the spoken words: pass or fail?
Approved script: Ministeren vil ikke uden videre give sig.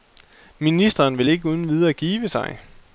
pass